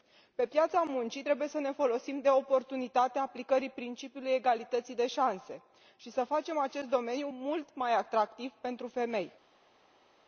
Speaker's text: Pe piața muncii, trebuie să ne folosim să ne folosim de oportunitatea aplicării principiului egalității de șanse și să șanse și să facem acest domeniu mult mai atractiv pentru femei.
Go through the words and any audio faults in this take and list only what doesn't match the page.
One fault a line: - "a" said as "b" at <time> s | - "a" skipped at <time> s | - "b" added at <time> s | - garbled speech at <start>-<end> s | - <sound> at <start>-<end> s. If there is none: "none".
- "să ne folosim" skipped at 2.2 s
- "șanse și să" skipped at 6.2 s